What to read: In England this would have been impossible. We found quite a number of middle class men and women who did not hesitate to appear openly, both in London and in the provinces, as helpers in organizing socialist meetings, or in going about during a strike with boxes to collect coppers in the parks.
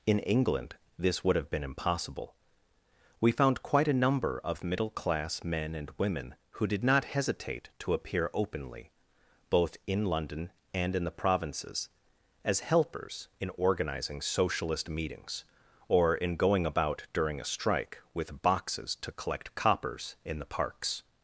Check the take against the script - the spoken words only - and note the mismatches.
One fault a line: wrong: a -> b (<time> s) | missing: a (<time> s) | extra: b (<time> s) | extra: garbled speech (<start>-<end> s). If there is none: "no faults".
no faults